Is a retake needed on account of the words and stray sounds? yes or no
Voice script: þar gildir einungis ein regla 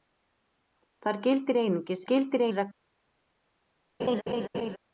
yes